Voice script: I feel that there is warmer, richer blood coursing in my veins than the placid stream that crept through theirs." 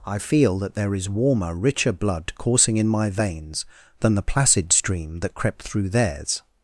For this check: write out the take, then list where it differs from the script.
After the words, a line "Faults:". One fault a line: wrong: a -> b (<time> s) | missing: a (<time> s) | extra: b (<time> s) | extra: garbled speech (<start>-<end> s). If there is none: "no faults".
I feel that there is warmer, richer blood coursing in my veins than the placid stream that crept through theirs."
Faults:
no faults